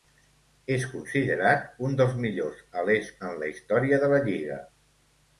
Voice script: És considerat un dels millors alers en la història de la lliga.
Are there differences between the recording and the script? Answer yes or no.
no